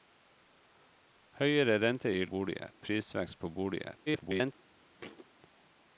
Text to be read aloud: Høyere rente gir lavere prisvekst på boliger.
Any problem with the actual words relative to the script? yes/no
yes